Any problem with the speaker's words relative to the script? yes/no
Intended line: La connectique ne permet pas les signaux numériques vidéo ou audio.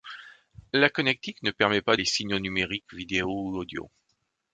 no